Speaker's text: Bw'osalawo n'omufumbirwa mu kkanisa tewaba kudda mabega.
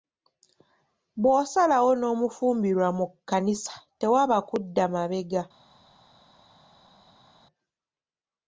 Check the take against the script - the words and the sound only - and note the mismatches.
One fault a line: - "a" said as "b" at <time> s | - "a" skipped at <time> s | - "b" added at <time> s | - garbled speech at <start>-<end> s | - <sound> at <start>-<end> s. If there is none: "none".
none